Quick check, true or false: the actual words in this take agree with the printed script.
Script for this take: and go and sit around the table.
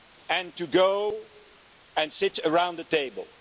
false